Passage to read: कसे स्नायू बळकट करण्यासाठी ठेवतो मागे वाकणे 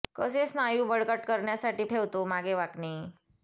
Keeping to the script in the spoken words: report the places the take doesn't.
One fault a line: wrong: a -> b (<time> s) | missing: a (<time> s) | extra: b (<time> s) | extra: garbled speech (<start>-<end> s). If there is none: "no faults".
no faults